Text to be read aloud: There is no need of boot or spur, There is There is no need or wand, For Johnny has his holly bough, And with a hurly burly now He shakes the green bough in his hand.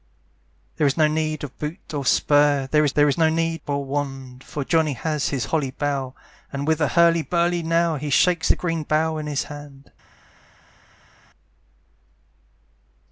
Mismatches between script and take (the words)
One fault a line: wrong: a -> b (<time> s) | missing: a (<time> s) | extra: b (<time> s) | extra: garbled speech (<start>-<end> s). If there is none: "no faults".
no faults